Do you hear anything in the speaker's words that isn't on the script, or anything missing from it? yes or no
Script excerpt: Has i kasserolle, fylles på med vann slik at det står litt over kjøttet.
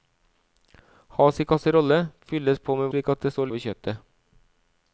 yes